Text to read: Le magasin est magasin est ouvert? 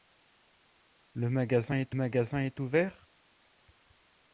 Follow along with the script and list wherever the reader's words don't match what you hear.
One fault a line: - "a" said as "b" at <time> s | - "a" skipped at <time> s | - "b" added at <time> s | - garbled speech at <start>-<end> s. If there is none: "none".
none